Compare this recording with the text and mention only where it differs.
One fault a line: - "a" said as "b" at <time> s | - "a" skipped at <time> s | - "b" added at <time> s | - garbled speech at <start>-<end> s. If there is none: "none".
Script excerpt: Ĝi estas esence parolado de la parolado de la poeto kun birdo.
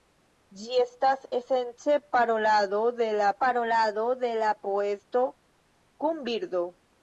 none